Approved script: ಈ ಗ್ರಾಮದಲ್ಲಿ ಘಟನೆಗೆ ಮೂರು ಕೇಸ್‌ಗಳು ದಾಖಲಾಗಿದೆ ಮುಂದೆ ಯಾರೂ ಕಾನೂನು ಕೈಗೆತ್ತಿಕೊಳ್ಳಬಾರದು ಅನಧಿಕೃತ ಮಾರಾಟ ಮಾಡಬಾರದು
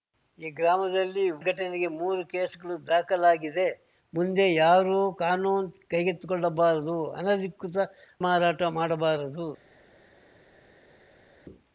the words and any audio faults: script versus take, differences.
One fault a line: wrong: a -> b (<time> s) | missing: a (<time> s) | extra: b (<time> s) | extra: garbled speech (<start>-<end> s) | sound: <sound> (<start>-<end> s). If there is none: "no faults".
no faults